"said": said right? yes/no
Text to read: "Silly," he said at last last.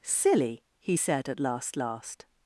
yes